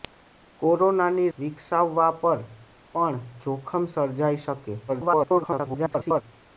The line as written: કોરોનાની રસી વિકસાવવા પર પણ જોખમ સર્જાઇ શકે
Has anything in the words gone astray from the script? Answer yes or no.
yes